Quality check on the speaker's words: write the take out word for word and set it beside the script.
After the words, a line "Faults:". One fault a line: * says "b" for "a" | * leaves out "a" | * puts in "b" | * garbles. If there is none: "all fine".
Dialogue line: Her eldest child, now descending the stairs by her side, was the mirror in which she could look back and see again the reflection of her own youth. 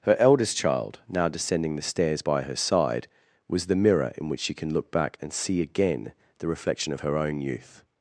Her eldest child, now descending the stairs by her side, was the mirror in which she can look back and see again the reflection of her own youth.
Faults:
* says "can" for "could"